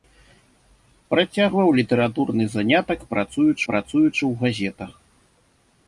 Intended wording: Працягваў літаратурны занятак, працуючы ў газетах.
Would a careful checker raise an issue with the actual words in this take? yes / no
yes